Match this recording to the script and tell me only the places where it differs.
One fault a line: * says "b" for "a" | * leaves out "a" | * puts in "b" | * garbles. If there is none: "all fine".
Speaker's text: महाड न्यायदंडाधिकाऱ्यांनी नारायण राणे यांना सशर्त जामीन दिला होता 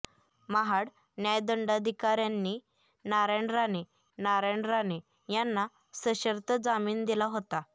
* puts in "नारायण राणे"